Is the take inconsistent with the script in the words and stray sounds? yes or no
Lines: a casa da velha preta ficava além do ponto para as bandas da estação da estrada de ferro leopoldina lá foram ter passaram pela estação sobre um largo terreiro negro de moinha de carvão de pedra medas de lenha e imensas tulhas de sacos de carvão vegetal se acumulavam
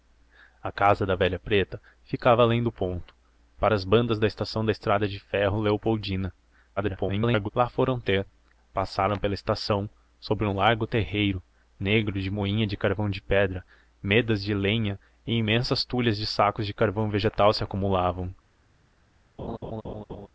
yes